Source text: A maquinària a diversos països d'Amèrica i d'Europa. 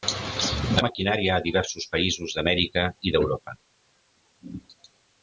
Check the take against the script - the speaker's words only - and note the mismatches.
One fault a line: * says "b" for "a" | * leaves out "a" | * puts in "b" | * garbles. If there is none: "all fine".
all fine